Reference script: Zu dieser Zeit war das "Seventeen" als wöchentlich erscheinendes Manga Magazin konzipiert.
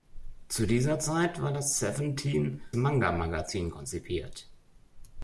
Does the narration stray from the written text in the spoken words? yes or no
yes